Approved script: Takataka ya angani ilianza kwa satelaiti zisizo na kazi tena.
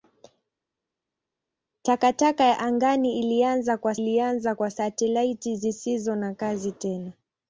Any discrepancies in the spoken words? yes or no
yes